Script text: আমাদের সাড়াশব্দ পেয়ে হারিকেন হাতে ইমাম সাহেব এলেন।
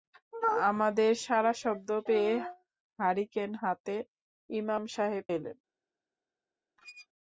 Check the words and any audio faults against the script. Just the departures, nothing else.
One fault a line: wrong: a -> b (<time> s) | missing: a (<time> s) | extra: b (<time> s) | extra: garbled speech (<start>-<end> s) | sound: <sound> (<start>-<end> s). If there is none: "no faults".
sound: squeak (6.8-7.1 s)